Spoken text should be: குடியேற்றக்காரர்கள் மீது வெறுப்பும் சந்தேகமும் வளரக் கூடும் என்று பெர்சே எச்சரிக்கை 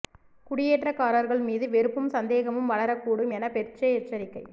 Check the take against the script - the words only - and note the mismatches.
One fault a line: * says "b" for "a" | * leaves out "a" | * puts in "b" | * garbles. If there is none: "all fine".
* says "என" for "என்று"